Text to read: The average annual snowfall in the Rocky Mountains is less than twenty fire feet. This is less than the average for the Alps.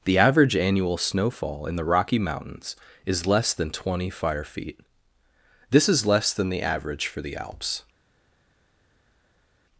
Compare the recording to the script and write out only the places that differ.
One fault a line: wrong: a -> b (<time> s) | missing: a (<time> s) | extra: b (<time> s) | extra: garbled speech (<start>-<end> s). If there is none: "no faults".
no faults